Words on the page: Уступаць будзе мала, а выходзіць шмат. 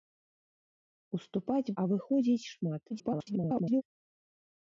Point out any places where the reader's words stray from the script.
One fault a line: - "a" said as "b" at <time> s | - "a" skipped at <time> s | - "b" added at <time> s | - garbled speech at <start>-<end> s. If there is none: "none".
- "будзе мала" skipped at 1.7 s
- garbled speech at 2.9-3.8 s